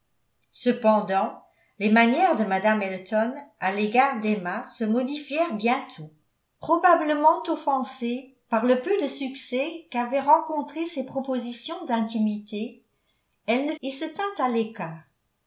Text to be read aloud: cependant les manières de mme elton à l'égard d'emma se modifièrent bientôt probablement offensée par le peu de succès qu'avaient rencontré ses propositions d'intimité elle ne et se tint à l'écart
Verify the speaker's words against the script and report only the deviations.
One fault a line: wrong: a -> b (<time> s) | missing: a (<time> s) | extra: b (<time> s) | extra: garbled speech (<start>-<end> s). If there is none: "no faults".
no faults